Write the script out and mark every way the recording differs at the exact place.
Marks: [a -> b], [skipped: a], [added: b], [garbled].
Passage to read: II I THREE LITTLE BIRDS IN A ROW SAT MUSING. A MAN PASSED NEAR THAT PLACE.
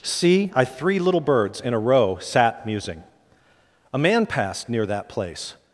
[II -> See] I THREE LITTLE BIRDS IN A ROW SAT MUSING. A MAN PASSED NEAR THAT PLACE.